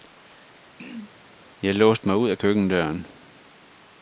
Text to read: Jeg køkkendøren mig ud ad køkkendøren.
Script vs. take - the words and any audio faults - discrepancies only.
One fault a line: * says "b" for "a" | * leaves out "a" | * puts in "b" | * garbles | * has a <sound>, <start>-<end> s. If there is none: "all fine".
* has a throat clearing, 0.8-1.1 s
* says "låste" for "køkkendøren"